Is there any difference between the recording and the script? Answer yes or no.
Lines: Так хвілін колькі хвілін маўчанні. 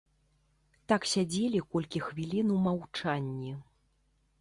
yes